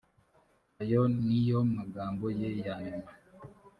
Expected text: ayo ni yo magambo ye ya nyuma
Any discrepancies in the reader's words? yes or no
no